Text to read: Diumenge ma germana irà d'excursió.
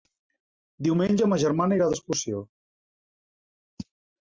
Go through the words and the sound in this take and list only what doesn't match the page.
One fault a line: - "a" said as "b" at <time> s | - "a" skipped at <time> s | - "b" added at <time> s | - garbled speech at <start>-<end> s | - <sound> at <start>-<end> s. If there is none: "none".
none